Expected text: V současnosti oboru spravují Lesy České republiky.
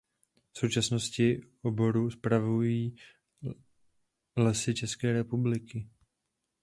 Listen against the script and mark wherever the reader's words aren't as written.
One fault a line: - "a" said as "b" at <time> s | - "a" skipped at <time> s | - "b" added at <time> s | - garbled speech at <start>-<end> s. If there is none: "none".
none